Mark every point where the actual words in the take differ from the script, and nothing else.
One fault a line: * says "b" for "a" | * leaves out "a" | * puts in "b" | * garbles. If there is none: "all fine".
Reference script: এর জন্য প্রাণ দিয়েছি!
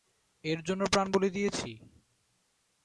* puts in "বলি"